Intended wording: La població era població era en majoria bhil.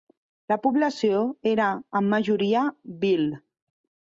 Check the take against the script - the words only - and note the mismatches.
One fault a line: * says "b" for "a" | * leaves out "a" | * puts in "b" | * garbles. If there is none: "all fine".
* leaves out "població era"